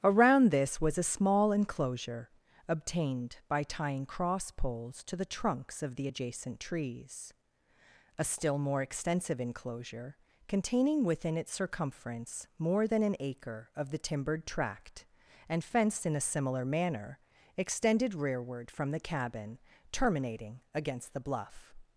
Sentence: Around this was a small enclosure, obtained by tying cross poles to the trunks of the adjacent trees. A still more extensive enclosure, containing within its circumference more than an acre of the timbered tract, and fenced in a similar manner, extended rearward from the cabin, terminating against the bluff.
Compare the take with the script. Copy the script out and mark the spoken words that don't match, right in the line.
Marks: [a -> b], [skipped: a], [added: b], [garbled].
Around this was a small enclosure, obtained by tying cross poles to the trunks of the adjacent trees. A still more extensive enclosure, containing within its circumference more than an acre of the timbered tract, and fenced in a similar manner, extended rearward from the cabin, terminating against the bluff.